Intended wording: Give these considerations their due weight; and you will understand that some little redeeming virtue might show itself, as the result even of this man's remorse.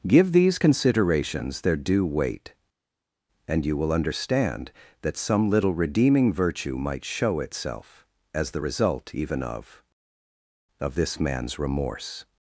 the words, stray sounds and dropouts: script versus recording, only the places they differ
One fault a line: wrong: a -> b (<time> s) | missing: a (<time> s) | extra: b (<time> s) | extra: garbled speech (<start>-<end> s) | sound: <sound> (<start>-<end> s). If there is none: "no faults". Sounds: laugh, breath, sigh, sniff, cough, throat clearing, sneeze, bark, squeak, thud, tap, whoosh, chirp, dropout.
extra: of (10.8 s)